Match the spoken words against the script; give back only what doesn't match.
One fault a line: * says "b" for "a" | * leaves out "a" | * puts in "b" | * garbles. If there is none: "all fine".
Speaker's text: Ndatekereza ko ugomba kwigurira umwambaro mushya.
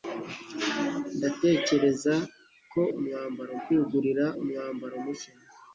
* says "umwambaro" for "ugomba"